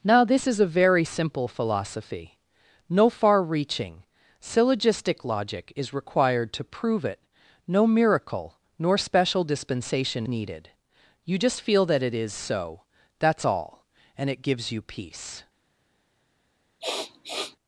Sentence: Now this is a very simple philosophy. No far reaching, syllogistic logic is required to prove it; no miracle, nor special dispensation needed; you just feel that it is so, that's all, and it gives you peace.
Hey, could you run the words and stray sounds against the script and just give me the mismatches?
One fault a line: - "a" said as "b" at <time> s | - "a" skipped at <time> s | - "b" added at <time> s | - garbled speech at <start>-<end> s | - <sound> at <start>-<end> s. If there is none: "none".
- sniff at 16.8-17.6 s